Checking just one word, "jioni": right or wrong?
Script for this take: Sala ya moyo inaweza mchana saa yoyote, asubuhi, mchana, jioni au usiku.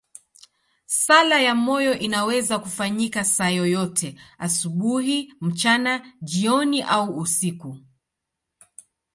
right